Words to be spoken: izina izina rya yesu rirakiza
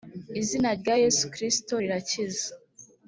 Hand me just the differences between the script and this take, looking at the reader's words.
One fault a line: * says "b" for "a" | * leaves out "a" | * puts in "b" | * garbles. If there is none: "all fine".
* leaves out "izina"
* puts in "kristo"